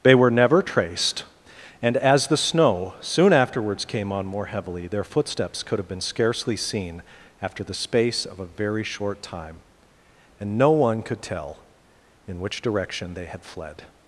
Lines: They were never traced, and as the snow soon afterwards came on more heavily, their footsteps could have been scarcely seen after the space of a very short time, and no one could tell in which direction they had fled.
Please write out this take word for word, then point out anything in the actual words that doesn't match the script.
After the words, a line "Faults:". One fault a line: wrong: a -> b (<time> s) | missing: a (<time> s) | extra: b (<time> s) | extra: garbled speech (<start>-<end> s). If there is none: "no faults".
They were never traced, and as the snow soon afterwards came on more heavily, their footsteps could have been scarcely seen after the space of a very short time, and no one could tell in which direction they had fled.
Faults:
no faults